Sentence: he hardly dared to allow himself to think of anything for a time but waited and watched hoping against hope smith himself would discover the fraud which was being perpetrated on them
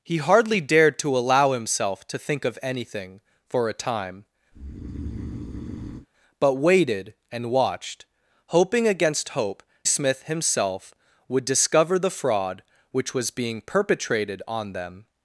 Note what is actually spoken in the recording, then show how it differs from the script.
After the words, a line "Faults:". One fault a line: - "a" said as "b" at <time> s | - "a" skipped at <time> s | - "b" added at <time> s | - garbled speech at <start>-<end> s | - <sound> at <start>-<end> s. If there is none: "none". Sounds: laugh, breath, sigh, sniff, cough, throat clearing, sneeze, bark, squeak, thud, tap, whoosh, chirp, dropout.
he hardly dared to allow himself to think of anything for a time but waited and watched hoping against hope smith himself would discover the fraud which was being perpetrated on them
Faults:
- breath at 4.5-6.1 s